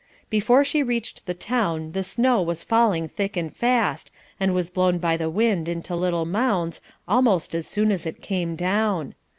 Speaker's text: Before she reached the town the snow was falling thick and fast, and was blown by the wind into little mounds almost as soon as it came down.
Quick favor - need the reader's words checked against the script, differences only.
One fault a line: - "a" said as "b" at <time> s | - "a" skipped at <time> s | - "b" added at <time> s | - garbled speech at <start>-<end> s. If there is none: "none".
none